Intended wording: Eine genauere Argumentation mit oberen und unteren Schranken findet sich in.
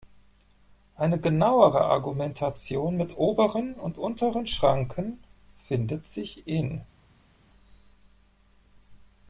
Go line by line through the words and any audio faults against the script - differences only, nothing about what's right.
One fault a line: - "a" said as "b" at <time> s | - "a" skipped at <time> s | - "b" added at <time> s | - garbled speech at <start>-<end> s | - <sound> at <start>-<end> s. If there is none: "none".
none